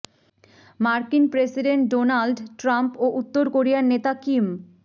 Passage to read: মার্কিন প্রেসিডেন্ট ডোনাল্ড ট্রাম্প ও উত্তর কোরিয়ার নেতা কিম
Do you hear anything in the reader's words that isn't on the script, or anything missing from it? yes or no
no